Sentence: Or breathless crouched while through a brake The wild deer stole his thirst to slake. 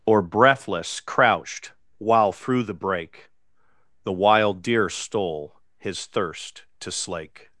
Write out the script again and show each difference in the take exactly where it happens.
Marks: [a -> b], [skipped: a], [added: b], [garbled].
Or breathless crouched while through [a -> the] brake The wild deer stole his thirst to slake.